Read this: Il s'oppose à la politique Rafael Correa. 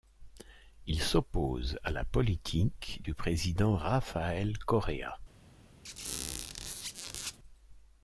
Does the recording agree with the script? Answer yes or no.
no